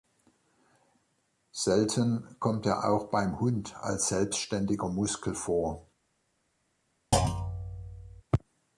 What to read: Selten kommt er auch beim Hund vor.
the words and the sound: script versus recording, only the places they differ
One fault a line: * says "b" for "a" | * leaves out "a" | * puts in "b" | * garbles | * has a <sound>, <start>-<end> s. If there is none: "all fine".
* puts in "als selbstständiger Muskel"
* has a thud, 7.1-8.2 s